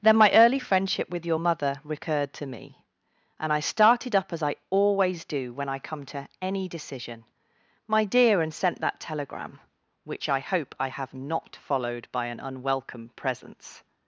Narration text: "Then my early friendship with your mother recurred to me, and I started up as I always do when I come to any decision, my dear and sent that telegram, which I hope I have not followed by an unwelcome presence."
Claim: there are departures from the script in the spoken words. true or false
false